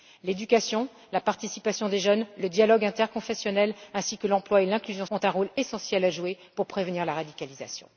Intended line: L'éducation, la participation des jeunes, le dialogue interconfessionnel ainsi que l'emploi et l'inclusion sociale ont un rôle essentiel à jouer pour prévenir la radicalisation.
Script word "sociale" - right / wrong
wrong